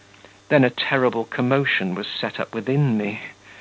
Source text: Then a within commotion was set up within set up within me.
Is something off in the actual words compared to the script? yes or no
yes